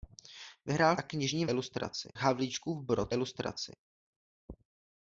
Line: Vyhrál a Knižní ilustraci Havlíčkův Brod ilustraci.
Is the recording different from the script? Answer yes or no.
no